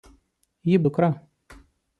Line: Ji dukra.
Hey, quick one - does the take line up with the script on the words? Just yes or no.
yes